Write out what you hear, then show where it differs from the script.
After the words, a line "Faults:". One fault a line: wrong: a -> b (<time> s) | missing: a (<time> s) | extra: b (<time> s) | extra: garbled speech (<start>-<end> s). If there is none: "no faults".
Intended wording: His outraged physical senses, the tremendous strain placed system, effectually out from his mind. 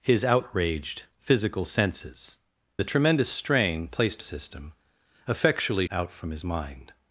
His outraged physical senses, the tremendous strain placed system, effectually out from his mind.
Faults:
no faults